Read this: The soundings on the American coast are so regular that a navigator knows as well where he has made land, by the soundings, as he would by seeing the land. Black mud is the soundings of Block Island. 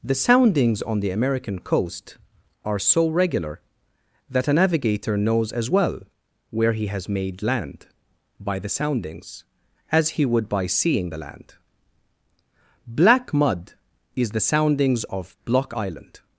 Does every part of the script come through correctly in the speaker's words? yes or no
yes